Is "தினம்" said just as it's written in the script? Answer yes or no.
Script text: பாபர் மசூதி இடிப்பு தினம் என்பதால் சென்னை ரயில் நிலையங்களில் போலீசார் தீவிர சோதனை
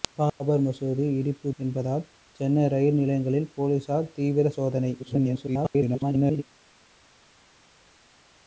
no